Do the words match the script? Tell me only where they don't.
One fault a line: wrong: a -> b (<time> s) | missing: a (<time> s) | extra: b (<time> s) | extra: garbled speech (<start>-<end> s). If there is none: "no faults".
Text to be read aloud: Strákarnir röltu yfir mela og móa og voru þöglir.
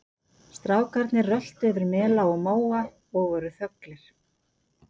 no faults